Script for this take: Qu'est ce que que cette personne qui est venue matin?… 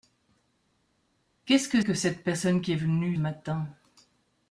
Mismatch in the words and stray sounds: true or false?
false